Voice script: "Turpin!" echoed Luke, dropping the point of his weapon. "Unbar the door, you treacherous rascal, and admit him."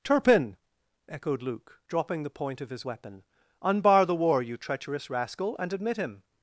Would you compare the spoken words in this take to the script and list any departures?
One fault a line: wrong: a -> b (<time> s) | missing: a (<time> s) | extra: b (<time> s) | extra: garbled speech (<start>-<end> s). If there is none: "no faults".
wrong: door -> war (4.1 s)